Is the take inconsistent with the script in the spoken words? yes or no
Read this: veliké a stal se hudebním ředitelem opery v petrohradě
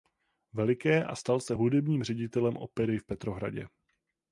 no